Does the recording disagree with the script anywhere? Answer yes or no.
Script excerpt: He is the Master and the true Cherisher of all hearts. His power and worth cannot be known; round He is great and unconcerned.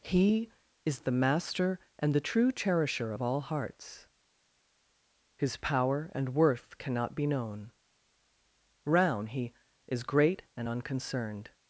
no